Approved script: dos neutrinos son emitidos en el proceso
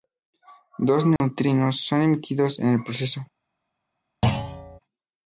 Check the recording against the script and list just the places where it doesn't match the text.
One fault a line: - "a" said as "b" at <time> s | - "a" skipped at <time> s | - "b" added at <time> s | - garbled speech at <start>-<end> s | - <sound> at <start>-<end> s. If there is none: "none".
- dropout at 1.2-1.2 s
- thud at 4.2-4.8 s